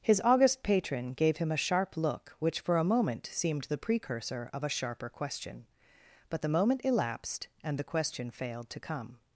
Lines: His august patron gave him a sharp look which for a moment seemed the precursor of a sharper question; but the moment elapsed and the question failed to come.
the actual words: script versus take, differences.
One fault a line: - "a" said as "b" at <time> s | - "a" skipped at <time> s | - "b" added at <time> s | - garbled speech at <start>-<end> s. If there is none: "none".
none